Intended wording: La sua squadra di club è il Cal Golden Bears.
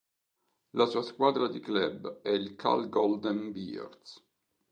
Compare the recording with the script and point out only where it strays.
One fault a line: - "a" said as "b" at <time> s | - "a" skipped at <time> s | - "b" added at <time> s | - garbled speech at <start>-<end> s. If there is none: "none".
none